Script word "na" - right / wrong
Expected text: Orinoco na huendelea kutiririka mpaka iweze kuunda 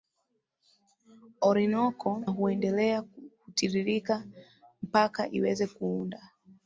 wrong